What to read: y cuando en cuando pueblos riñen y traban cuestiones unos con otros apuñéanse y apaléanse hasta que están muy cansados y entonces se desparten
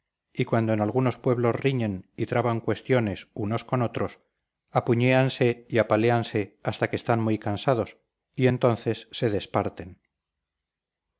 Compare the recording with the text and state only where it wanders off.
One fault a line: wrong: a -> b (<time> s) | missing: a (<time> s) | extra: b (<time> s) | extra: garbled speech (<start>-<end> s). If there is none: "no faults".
wrong: cuando -> algunos (0.8 s)